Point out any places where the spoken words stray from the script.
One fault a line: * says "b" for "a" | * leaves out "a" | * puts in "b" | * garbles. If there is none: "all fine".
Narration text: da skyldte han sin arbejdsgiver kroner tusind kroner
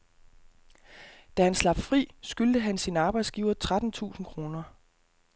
* puts in "han slap fri"
* says "tretten" for "kroner"